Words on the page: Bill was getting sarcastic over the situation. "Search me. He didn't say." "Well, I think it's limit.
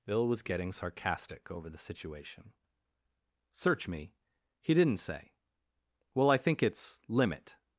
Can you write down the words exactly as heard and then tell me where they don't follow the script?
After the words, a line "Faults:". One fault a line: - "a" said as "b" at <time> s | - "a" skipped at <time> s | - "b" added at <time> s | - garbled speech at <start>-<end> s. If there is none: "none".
Bill was getting sarcastic over the situation. "Search me. He didn't say." "Well, I think it's limit.
Faults:
none